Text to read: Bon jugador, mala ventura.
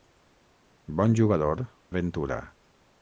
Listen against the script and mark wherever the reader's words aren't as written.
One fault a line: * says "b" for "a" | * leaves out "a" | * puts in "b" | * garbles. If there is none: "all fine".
* leaves out "mala"